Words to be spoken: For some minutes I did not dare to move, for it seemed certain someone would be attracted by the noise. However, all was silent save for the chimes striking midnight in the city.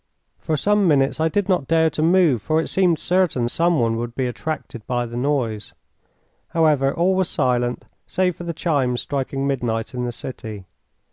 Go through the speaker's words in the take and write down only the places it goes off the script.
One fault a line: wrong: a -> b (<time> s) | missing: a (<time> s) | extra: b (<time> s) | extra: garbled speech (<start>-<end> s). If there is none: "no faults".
no faults